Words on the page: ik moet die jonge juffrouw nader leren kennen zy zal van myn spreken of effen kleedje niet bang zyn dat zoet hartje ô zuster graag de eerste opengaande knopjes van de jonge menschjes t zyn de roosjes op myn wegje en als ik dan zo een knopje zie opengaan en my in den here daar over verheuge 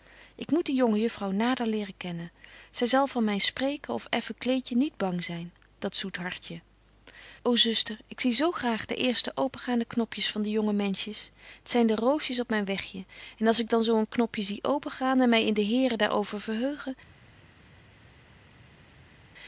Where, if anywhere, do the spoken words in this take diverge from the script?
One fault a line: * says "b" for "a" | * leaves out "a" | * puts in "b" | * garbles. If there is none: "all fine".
* puts in "ik zie zo"